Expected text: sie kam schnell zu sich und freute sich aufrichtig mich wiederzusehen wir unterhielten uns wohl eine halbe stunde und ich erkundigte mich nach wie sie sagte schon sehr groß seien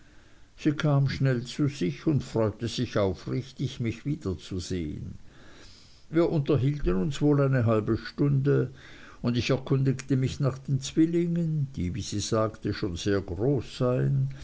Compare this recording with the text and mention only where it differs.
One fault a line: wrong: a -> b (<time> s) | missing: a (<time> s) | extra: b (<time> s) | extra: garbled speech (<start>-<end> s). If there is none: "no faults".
extra: den zwillingen die (10.6 s)